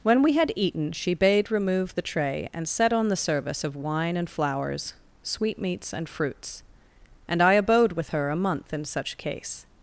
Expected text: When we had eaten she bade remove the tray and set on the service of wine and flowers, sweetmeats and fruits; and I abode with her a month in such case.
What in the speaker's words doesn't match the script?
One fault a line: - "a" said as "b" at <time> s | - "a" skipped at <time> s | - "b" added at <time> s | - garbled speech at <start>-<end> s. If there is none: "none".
none